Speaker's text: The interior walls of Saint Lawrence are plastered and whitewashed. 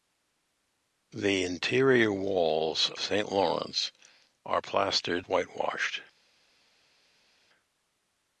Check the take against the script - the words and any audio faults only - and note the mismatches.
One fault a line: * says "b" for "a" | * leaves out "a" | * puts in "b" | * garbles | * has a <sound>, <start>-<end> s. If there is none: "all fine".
* leaves out "of"
* leaves out "and"